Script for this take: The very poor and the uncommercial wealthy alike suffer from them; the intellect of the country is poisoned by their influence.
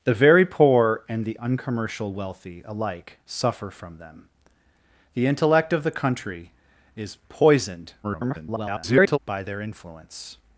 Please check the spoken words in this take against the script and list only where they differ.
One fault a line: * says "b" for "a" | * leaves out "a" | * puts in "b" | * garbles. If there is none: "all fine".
* garbles